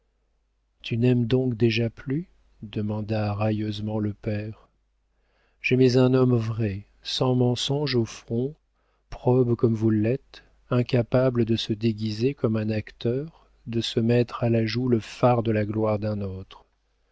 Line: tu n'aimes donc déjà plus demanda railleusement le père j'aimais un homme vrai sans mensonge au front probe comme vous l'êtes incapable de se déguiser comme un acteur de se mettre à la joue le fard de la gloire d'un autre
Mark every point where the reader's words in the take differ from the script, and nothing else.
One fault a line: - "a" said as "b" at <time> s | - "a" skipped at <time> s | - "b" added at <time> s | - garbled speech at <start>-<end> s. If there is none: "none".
none